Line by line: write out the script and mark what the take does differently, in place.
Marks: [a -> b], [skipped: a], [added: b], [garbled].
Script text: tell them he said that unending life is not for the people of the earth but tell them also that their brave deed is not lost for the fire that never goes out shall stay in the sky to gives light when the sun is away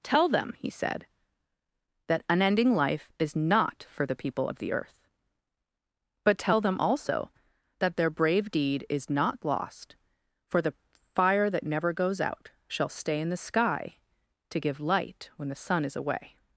tell them he said that unending life is not for the people of the earth but tell them also that their brave deed is not lost for the fire that never goes out shall stay in the sky to [gives -> give] light when the sun is away